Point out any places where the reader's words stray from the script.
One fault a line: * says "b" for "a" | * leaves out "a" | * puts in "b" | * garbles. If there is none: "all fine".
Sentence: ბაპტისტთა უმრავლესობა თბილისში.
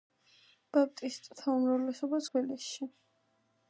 all fine